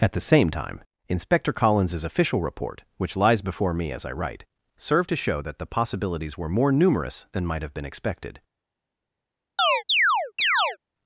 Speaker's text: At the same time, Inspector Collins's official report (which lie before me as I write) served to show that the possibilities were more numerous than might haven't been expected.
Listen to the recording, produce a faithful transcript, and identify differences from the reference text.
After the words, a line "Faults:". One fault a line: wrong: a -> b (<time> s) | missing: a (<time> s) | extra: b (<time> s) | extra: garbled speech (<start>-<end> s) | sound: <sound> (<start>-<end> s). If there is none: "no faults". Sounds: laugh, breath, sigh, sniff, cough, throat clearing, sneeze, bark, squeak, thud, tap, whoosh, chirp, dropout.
At the same time, Inspector Collins's official report (which lies before me as I write) served to show that the possibilities were more numerous than might have been expected.
Faults:
wrong: lie -> lies (3.1 s)
wrong: haven't -> have (7.6 s)
sound: chirp (9.6-10.8 s)